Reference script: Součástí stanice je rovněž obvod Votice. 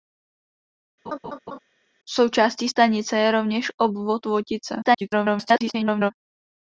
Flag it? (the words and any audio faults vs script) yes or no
yes